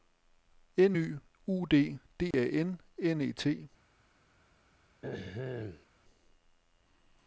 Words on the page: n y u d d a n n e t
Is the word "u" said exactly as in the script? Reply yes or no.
yes